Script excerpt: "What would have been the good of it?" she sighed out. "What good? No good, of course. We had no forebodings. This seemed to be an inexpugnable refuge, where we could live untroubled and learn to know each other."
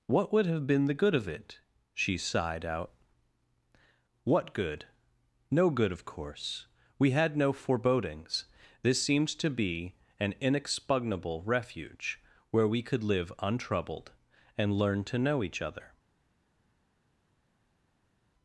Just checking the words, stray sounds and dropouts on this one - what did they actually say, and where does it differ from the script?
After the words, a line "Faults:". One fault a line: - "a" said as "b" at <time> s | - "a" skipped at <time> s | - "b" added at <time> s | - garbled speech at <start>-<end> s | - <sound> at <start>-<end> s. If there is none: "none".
"What would have been the good of it?" she sighed out. "What good? No good, of course. We had no forebodings. This seems to be an inexpugnable refuge, where we could live untroubled and learn to know each other."
Faults:
- "seemed" said as "seems" at 9.0 s